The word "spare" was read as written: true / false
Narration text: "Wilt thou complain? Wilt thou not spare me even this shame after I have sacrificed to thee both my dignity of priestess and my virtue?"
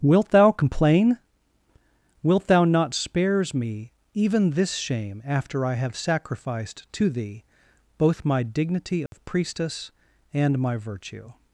false